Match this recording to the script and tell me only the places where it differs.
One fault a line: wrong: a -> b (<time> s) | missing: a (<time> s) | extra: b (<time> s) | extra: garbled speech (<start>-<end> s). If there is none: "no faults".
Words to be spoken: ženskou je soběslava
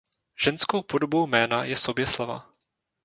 extra: podobou jména (0.8 s)